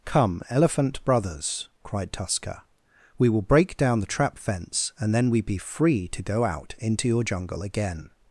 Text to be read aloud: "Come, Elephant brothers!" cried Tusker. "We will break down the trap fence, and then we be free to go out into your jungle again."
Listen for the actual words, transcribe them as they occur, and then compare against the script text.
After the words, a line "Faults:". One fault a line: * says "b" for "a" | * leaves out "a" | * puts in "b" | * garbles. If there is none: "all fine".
"Come, Elephant brothers!" cried Tusker. "We will break down the trap fence, and then we be free to go out into your jungle again."
Faults:
all fine